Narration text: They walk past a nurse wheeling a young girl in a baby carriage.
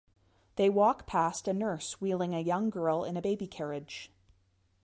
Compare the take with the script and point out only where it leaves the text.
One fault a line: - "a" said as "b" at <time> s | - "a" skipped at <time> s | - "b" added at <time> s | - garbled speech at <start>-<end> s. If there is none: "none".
none